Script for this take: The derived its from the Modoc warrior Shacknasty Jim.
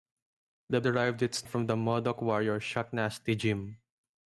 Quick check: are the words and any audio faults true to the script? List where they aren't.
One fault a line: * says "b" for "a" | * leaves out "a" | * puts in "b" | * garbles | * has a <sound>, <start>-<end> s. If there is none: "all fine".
all fine